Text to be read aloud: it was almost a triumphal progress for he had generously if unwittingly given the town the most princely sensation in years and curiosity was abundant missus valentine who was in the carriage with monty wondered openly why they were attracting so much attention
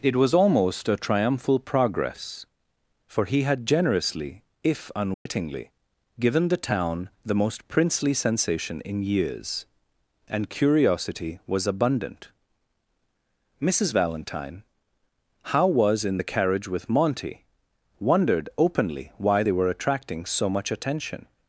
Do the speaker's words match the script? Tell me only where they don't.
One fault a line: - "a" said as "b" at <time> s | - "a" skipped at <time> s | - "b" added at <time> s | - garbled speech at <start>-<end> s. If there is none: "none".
- "who" said as "how" at 15.4 s